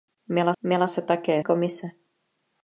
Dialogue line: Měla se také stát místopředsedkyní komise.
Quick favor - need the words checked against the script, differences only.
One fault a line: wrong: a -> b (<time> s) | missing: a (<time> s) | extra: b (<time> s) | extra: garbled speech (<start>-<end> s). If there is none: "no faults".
extra: měla (0.6 s)
missing: stát místopředsedkyní (1.4 s)